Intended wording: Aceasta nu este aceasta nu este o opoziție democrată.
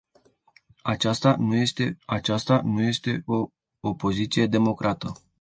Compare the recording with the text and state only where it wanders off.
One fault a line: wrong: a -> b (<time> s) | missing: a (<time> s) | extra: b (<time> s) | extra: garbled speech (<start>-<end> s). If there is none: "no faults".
no faults